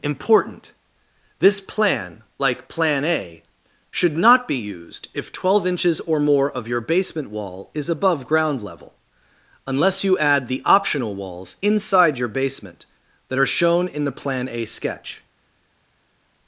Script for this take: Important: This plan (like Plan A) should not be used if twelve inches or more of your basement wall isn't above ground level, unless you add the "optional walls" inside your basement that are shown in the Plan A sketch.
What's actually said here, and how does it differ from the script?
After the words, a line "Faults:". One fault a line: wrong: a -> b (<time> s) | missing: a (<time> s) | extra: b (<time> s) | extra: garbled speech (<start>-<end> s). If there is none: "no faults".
Important: This plan (like Plan A) should not be used if twelve inches or more of your basement wall is above ground level, unless you add the "optional walls" inside your basement that are shown in the Plan A sketch.
Faults:
wrong: isn't -> is (7.8 s)